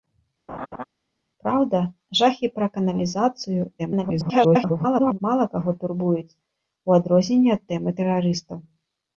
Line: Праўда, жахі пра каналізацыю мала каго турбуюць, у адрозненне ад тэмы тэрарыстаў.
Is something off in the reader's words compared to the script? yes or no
yes